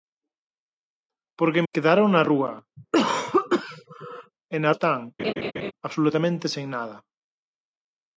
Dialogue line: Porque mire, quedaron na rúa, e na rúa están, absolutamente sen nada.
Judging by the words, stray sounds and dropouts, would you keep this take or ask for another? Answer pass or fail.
fail